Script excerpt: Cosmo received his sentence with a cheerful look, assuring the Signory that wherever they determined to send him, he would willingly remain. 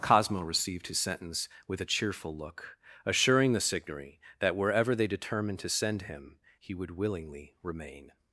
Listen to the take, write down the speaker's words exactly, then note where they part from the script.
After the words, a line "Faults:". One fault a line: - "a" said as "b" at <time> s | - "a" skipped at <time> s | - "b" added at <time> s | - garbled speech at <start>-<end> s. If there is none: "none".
Cosmo received his sentence with a cheerful look, assuring the Signory that wherever they determined to send him, he would willingly remain.
Faults:
none